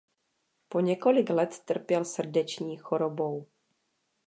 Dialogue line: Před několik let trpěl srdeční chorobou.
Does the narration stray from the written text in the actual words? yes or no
yes